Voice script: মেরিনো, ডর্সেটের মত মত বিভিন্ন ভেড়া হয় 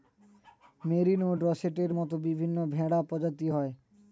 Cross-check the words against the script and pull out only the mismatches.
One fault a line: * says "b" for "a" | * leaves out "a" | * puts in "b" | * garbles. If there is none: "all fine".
* leaves out "মত"
* puts in "প্রজাতি"